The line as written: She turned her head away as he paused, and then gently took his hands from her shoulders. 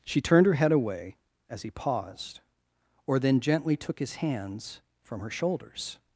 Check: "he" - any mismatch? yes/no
no